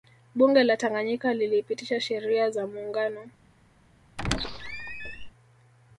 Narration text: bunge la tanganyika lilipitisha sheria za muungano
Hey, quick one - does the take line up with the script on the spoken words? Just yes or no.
yes